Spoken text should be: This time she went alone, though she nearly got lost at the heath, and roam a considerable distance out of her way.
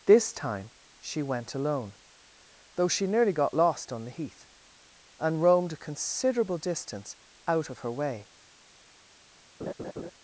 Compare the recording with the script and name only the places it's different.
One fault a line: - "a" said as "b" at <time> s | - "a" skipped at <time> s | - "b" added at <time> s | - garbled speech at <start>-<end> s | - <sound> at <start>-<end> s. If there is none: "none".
- "at" said as "on" at 3.9 s
- "roam" said as "roamed" at 5.4 s
- laugh at 9.6-10.1 s